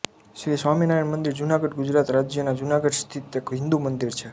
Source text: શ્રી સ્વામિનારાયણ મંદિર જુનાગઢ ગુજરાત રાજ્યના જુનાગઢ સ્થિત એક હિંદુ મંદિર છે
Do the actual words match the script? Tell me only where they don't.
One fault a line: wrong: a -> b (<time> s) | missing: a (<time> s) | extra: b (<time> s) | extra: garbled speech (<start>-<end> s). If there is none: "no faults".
no faults